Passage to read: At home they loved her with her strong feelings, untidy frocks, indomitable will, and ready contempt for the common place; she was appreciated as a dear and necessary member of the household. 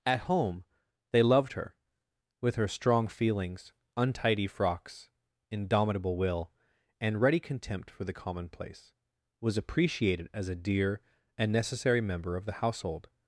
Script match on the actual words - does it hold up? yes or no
no